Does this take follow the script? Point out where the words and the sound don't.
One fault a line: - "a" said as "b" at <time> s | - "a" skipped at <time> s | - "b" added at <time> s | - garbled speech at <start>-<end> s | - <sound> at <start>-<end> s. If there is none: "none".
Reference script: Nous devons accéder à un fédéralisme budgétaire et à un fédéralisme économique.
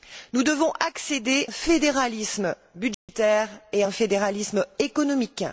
- "à" skipped at 1.5 s
- dropout at 2.9-3.1 s